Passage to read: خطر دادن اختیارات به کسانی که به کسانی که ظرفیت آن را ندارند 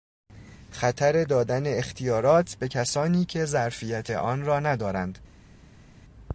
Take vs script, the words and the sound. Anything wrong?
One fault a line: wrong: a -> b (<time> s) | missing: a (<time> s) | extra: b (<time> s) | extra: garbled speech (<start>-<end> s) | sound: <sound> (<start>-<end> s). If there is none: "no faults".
missing: به کسانی که (3.5 s)